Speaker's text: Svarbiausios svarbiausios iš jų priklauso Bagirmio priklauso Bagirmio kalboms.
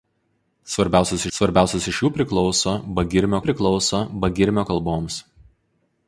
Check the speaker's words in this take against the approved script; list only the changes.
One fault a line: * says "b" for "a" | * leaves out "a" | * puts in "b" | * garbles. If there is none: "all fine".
all fine